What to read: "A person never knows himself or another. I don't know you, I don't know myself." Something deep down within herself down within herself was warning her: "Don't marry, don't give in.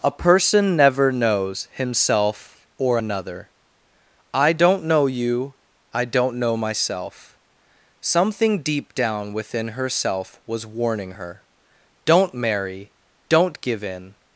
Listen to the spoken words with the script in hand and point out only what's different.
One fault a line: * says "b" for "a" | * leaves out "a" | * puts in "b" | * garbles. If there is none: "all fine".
* leaves out "down within herself"